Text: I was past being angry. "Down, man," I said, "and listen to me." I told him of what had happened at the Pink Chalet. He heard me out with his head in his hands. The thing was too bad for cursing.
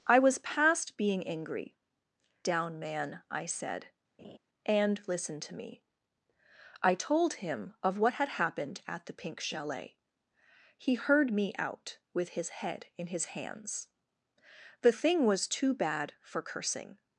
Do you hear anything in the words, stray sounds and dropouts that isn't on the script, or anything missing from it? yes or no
yes